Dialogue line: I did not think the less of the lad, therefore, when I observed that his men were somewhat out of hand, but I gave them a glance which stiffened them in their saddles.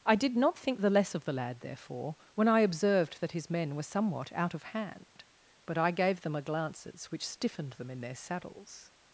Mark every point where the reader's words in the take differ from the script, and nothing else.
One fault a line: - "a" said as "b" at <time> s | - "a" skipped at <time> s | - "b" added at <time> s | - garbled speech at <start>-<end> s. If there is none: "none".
- "glance" said as "glances" at 6.4 s